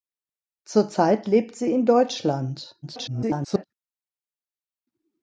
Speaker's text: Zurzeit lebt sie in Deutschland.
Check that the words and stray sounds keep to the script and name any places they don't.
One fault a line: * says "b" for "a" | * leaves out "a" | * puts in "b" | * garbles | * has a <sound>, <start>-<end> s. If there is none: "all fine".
* garbles